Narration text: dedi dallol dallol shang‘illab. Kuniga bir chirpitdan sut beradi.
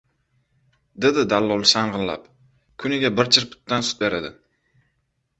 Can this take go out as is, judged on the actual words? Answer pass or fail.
fail